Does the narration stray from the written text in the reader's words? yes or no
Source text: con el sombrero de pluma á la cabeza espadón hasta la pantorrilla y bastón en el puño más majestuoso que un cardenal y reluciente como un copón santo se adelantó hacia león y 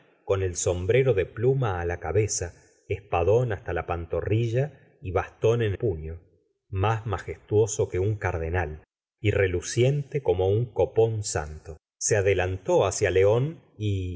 yes